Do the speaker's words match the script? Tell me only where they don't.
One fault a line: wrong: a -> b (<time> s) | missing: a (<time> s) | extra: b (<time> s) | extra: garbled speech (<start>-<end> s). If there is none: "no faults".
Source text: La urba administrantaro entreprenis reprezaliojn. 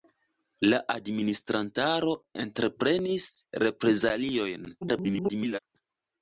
missing: urba (0.8 s)
extra: garbled speech (4.8-5.6 s)